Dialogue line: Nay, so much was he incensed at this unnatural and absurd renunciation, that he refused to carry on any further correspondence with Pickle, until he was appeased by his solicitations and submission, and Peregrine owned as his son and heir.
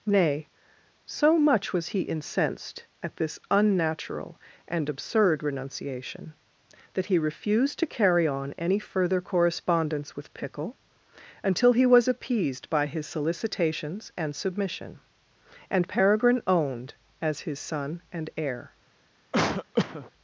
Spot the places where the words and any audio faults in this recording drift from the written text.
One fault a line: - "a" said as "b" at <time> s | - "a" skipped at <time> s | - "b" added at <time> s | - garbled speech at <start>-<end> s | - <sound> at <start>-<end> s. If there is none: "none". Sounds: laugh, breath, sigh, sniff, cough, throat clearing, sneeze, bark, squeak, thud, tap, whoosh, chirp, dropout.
- cough at 19.3-20.1 s